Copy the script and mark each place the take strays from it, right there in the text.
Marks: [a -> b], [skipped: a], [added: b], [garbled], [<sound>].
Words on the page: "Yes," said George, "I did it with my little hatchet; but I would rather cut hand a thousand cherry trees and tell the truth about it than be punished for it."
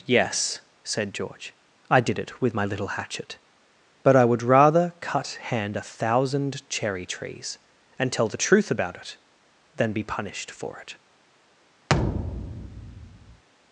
"Yes," said George, "I did it with my little hatchet; but I would rather cut hand a thousand cherry trees and tell the truth about it than be punished for it." [thud]